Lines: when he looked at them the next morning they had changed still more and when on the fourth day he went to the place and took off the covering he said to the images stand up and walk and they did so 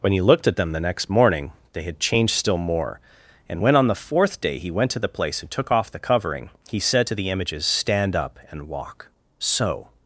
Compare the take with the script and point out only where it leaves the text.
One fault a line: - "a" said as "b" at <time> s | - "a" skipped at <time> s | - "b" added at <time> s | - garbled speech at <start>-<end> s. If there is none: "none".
- "and they did" skipped at 9.1 s